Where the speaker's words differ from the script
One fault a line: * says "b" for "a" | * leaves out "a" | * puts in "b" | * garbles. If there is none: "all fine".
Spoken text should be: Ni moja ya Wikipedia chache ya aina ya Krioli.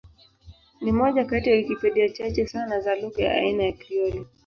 * puts in "kati"
* puts in "sana za lugha"